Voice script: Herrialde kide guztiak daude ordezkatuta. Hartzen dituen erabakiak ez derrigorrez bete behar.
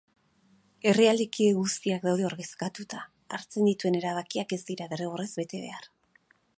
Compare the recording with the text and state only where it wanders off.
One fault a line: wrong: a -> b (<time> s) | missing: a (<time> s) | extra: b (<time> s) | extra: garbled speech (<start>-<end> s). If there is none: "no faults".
extra: dira (4.7 s)